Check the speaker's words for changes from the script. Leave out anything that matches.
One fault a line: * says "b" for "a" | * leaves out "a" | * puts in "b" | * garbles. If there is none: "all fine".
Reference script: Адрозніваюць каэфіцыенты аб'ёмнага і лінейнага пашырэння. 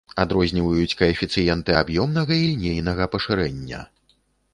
all fine